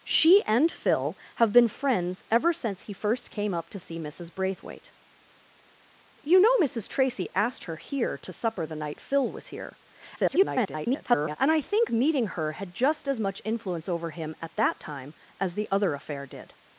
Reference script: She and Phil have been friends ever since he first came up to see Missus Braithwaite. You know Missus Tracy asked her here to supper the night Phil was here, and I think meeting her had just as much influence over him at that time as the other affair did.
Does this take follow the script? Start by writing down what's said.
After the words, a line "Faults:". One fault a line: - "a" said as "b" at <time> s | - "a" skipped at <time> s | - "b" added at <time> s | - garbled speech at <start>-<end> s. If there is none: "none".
She and Phil have been friends ever since he first came up to see Missus Braithwaite. You know Missus Tracy asked her here to supper the night Phil was here, [garbled] and I think meeting her had just as much influence over him at that time as the other affair did.
Faults:
- garbled speech at 10.2-11.4 s